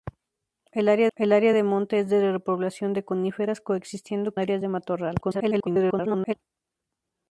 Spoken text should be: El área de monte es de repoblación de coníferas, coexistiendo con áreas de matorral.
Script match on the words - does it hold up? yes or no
no